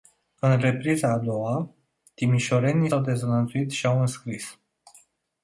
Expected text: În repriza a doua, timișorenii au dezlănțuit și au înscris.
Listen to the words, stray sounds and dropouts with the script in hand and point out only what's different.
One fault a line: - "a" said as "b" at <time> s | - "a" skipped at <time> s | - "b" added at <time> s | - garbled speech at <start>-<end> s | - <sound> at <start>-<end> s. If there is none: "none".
none